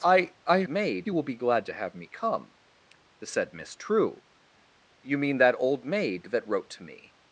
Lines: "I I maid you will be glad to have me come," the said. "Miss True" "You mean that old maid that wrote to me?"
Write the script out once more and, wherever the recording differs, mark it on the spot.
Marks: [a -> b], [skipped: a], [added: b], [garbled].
"I I maid you will be glad to have me come," the said. "Miss True" "You mean that old maid that wrote to me?"